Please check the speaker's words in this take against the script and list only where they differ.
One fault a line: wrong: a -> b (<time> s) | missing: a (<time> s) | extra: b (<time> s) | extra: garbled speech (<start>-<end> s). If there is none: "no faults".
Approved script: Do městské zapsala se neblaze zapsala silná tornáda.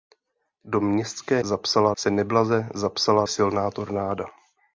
no faults